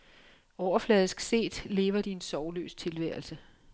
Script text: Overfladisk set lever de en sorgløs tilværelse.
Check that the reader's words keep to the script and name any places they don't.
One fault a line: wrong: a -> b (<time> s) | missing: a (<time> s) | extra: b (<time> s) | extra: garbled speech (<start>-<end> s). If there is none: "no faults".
no faults